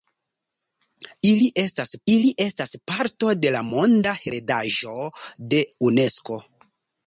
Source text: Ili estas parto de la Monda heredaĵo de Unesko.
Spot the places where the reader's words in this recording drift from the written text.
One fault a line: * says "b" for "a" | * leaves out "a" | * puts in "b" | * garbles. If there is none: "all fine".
* puts in "ili estas"